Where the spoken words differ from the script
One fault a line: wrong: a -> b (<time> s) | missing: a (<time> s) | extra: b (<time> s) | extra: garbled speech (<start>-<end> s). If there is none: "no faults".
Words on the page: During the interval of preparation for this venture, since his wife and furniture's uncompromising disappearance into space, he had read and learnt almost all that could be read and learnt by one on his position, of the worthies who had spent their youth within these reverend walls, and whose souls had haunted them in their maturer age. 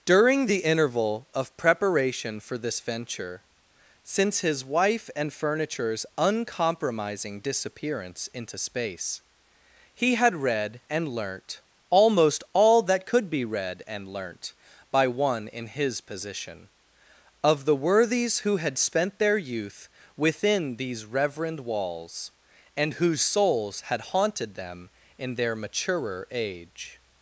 wrong: on -> in (15.5 s)